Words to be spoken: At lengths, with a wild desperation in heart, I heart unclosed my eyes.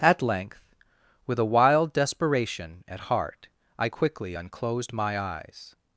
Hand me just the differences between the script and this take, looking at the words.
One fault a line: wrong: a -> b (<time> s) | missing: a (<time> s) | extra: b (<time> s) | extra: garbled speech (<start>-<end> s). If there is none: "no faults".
wrong: lengths -> length (0.2 s)
wrong: in -> at (2.9 s)
wrong: heart -> quickly (3.9 s)